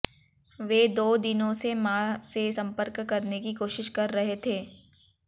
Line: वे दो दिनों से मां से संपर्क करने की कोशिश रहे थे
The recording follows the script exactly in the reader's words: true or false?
false